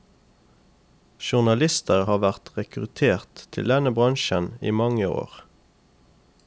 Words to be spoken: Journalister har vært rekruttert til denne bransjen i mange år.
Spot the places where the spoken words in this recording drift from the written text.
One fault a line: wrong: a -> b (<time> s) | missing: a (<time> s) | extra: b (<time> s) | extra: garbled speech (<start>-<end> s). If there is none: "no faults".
no faults